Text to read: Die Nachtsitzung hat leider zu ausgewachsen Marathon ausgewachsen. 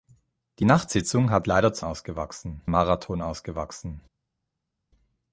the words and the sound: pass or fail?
pass